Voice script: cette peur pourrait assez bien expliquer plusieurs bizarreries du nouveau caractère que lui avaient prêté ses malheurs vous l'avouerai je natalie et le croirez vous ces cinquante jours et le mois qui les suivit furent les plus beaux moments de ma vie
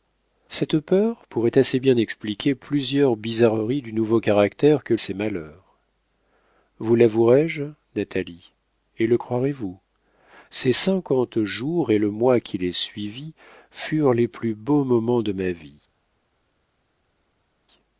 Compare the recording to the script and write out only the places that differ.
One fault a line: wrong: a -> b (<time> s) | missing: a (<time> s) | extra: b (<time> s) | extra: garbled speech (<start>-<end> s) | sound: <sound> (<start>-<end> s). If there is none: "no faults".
missing: lui avaient prêté (5.0 s)